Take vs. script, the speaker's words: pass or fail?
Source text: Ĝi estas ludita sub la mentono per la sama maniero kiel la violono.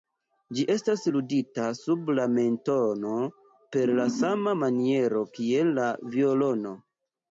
pass